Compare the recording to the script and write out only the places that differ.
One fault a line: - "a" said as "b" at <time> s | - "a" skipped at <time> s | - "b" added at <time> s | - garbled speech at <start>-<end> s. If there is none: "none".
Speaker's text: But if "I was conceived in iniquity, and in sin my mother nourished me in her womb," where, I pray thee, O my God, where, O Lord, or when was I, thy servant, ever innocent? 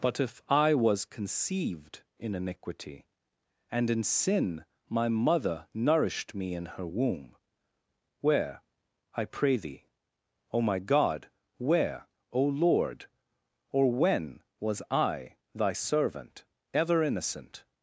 none